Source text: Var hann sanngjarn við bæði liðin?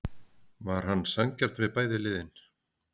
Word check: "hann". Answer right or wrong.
right